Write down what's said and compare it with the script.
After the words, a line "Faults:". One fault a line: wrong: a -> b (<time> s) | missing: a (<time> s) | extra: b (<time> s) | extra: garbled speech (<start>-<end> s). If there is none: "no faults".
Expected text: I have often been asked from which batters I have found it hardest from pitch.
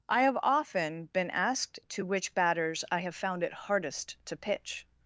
I have often been asked to which batters I have found it hardest to pitch.
Faults:
wrong: from -> to (1.9 s)
wrong: from -> to (4.2 s)